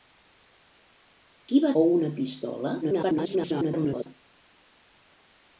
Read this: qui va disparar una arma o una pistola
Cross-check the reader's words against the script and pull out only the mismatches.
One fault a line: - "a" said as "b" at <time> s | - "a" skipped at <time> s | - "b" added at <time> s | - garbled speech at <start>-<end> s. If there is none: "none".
- "disparar una arma" skipped at 1.7 s
- garbled speech at 2.8-4.1 s